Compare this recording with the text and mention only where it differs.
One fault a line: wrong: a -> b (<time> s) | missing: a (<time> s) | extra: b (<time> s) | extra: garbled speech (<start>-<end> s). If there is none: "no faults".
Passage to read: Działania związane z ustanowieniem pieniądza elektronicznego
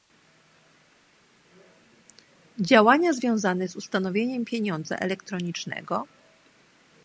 no faults